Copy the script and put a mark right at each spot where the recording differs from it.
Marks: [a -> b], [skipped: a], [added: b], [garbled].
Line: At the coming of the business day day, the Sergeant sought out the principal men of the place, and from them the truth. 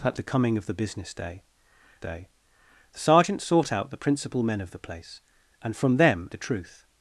At the coming of the business day day, the Sergeant sought out the principal men of the place, and from them the truth.